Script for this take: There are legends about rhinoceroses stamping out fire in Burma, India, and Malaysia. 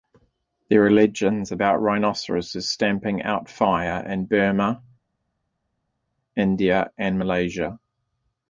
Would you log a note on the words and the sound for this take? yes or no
no